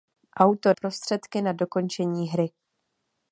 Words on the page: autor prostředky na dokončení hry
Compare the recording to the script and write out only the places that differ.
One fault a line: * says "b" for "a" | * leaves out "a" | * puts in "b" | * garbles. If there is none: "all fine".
all fine